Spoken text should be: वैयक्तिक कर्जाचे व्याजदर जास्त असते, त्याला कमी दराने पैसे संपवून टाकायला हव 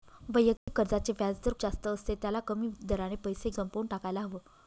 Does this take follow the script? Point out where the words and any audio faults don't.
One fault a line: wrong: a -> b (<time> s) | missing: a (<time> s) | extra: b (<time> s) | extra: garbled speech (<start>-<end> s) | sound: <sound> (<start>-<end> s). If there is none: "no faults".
sound: dropout (0.6-0.7 s)